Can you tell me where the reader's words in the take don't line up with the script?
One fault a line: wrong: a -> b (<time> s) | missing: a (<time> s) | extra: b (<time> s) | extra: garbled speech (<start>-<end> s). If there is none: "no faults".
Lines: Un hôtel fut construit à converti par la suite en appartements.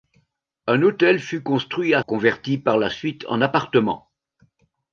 no faults